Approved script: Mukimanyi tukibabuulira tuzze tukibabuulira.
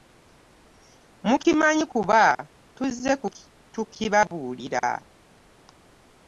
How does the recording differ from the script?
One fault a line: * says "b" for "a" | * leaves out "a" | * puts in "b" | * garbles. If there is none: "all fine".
* says "kuba" for "tukibabuulira"